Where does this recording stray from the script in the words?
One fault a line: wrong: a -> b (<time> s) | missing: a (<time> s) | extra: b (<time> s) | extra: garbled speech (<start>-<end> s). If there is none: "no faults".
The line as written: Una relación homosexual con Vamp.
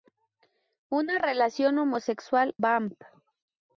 missing: con (2.5 s)